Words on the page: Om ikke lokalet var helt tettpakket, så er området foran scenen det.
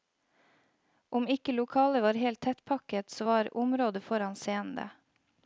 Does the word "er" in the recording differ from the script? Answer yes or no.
yes